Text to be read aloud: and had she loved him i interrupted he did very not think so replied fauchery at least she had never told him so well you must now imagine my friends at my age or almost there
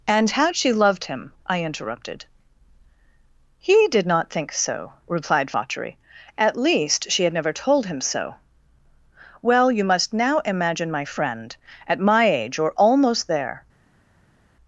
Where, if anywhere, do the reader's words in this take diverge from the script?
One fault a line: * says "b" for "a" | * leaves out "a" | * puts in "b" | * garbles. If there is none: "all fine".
* leaves out "very"
* says "friend" for "friends"